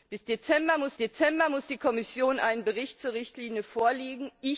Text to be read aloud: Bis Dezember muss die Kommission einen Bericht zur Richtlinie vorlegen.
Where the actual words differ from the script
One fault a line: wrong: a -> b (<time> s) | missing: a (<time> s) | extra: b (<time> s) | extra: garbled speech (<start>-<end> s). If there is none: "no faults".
extra: Dezember muss (1.0 s)